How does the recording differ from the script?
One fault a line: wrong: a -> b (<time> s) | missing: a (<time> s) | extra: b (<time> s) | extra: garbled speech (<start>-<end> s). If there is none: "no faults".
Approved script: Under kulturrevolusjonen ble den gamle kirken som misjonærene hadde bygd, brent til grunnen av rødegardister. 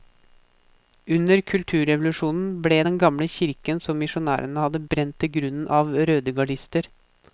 missing: bygd (4.8 s)